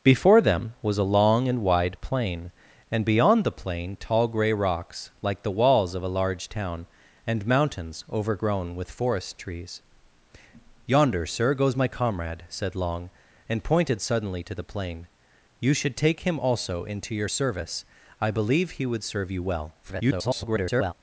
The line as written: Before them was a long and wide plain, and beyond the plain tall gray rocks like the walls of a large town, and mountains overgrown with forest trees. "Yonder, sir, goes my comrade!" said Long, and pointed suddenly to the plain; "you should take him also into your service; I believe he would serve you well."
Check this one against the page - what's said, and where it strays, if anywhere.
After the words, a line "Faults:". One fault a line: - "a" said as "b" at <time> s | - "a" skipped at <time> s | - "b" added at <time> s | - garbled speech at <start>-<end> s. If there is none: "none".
Before them was a long and wide plain, and beyond the plain tall gray rocks like the walls of a large town, and mountains overgrown with forest trees. "Yonder, sir, goes my comrade!" said Long, and pointed suddenly to the plain; "you should take him also into your service; I believe he would serve you well." [garbled]
Faults:
- garbled speech at 19.8-20.9 s